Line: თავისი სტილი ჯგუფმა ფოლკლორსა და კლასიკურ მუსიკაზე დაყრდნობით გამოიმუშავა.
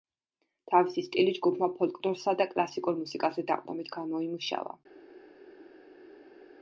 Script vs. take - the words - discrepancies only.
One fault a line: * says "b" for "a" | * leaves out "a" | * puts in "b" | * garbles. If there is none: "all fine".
all fine